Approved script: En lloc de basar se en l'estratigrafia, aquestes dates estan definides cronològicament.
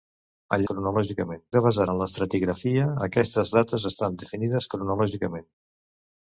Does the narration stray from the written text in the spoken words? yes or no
yes